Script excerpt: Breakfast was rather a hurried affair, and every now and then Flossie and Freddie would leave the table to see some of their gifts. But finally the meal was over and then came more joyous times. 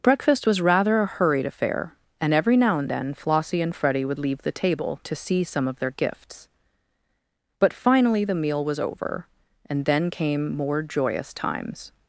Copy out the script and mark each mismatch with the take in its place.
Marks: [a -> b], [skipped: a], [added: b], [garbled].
Breakfast was rather a hurried affair, and every now and then Flossie and Freddie would leave the table to see some of their gifts. But finally the meal was over and then came more joyous times.